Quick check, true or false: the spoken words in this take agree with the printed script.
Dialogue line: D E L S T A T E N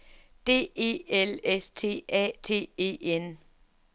true